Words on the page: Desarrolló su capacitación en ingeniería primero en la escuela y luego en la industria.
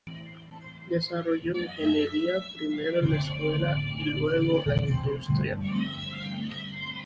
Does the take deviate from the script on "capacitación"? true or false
true